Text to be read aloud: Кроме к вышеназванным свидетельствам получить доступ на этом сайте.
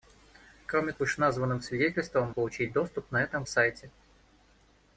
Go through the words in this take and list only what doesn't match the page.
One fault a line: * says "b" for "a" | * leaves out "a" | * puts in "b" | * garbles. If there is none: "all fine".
all fine